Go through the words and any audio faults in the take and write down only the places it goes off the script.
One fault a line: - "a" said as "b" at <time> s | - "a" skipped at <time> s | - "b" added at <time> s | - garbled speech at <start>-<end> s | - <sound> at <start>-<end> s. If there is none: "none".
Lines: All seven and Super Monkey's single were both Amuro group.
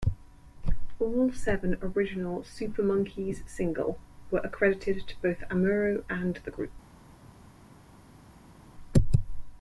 - "and" said as "original" at 1.8 s
- "accredited to" added at 4.4 s
- "and the" added at 6.1 s